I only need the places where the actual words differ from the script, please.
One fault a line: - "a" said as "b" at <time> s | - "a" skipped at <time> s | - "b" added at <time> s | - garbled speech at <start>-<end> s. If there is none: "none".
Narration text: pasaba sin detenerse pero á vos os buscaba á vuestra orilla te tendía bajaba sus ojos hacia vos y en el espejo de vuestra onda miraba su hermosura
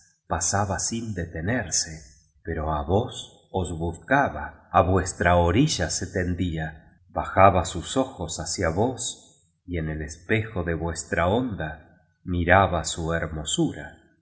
- "te" said as "se" at 5.9 s